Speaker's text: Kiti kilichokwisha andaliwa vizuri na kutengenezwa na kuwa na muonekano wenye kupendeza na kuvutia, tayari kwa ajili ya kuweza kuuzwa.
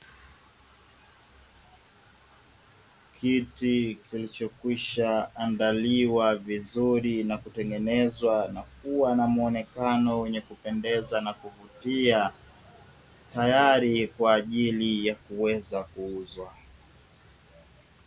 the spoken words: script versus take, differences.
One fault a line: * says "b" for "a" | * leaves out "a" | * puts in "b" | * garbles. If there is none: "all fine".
all fine